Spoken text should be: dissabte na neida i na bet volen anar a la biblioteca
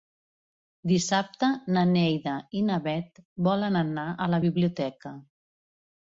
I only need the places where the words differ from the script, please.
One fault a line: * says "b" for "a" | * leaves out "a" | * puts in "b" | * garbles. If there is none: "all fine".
all fine